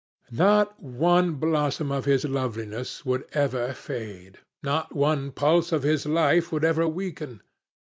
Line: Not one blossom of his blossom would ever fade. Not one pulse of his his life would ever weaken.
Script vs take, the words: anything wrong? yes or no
yes